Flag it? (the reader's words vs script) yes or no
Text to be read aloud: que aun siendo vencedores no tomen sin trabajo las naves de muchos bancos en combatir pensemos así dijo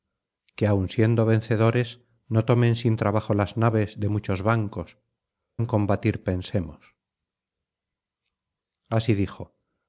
no